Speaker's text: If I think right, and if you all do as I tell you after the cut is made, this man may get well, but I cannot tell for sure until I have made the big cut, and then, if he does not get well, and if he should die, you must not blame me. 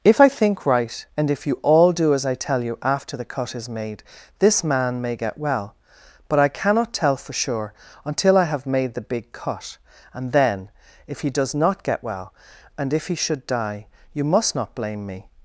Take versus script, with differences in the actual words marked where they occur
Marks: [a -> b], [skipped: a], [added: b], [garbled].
If I think right, and if you all do as I tell you after the cut is made, this man may get well, but I cannot tell for sure until I have made the big cut, and then, if he does not get well, and if he should die, you must not blame me.